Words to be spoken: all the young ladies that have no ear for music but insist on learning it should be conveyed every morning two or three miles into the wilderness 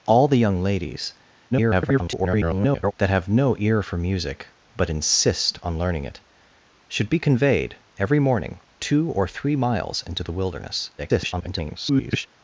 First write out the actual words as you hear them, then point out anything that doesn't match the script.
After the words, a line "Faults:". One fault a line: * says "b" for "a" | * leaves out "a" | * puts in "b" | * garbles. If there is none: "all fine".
all the young ladies [garbled] that have no ear for music but insist on learning it should be conveyed every morning two or three miles into the wilderness [garbled]
Faults:
* garbles
* garbles